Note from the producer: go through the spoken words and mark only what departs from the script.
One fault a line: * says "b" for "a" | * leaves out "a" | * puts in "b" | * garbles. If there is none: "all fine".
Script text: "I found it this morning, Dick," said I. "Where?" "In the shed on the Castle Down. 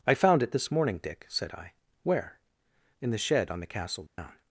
all fine